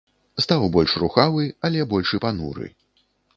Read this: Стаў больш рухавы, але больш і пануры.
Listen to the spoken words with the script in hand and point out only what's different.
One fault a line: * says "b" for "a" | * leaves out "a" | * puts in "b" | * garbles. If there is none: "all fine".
all fine